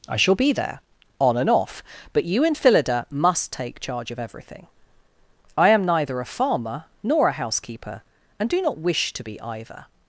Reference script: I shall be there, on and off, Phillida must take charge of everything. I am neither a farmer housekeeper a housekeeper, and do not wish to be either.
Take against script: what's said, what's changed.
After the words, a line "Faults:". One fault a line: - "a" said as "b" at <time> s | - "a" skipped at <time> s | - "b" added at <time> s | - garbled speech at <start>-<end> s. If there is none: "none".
I shall be there, on and off, but you and Phillida must take charge of everything. I am neither a farmer nor a housekeeper, and do not wish to be either.
Faults:
- "but you and" added at 2.1 s
- "housekeeper" said as "nor" at 7.0 s